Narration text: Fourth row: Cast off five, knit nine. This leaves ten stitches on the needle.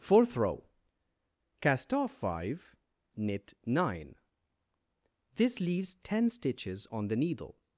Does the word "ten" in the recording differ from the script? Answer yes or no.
no